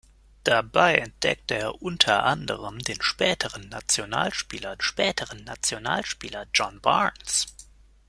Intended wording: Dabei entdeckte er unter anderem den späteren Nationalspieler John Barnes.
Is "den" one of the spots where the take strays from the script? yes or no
no